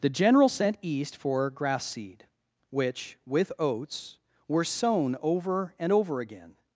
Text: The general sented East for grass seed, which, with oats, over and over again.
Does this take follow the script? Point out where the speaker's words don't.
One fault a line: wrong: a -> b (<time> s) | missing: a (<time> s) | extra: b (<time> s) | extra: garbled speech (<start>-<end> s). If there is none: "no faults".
wrong: sented -> sent (0.5 s)
extra: were sown (4.5 s)